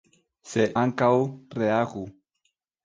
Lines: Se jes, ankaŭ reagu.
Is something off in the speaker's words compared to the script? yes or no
yes